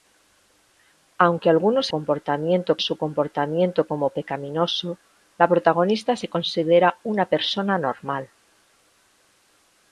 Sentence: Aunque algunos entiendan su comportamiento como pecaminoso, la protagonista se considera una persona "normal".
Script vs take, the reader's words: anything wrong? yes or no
yes